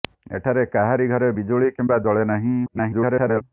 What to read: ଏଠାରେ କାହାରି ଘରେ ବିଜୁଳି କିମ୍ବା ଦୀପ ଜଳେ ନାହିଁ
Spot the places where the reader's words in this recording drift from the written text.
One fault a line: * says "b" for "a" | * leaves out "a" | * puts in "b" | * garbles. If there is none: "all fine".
* leaves out "ଦୀପ"
* garbles